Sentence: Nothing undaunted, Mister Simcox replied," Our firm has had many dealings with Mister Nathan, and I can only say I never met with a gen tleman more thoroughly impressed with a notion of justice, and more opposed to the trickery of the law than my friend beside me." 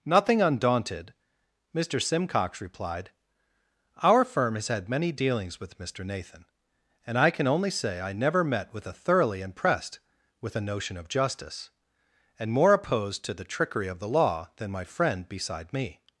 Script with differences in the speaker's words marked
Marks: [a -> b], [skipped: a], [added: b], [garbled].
Nothing undaunted, Mister Simcox replied," Our firm has had many dealings with Mister Nathan, and I can only say I never met with a [skipped: gen tleman more] thoroughly impressed with a notion of justice, and more opposed to the trickery of the law than my friend beside me."